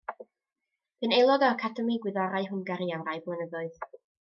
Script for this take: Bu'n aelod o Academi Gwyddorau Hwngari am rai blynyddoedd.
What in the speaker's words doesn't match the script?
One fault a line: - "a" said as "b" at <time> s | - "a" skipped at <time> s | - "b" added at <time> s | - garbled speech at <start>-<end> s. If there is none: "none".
none